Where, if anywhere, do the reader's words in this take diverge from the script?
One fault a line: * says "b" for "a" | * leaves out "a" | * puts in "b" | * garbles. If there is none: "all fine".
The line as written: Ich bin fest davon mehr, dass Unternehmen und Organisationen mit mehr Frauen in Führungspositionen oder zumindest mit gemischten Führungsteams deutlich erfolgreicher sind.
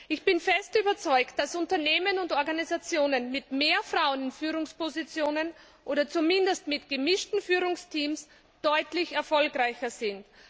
* says "überzeugt" for "mehr"